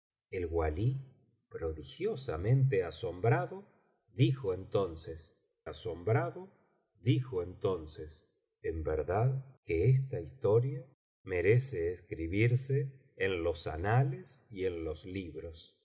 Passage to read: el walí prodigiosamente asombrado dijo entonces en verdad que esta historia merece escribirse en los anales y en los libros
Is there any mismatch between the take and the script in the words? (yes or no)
yes